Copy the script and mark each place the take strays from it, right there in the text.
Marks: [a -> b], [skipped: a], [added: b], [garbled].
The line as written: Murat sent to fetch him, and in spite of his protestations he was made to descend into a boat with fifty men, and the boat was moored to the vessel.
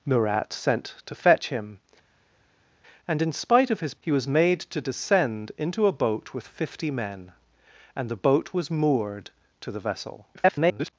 Murat sent to fetch him, and in spite of his [skipped: protestations] he was made to descend into a boat with fifty men, and the boat was moored to the vessel. [garbled]